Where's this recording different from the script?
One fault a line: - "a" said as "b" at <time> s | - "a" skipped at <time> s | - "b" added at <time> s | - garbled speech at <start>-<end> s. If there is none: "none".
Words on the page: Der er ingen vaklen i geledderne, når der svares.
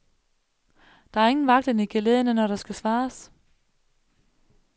- "skal" added at 2.5 s